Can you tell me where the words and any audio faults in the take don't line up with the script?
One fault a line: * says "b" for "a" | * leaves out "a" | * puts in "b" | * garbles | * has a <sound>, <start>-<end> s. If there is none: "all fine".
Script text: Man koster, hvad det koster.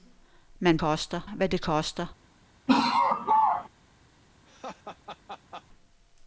* has a laugh, 2.7-3.7 s
* has a laugh, 4.4-5.6 s